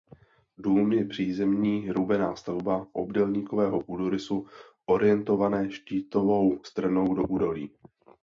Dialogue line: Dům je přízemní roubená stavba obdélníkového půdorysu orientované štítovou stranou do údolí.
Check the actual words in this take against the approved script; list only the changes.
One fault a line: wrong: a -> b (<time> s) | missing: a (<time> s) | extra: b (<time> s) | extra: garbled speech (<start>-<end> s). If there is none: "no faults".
no faults